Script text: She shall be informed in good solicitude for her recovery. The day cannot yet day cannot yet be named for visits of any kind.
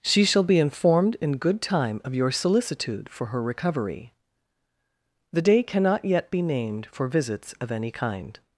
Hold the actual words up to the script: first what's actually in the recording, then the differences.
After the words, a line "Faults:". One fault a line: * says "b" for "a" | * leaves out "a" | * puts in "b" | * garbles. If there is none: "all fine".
She shall be informed in good time of your solicitude for her recovery. The day cannot yet be named for visits of any kind.
Faults:
* puts in "time of your"
* leaves out "day cannot yet"